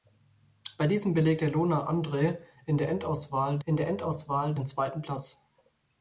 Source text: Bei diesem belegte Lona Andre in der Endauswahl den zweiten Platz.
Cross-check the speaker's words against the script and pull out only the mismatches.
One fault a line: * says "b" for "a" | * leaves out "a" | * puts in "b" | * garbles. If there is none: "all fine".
* puts in "in der Endauswahl"